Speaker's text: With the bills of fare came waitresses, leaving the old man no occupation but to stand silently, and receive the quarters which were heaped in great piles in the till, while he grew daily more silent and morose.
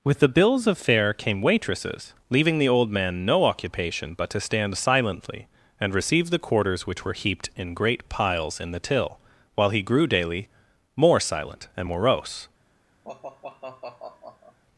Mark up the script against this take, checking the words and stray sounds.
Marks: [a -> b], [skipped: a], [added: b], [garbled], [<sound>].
With the bills of fare came waitresses, leaving the old man no occupation but to stand silently, and receive the quarters which were heaped in great piles in the till, while he grew daily more silent and morose. [sigh]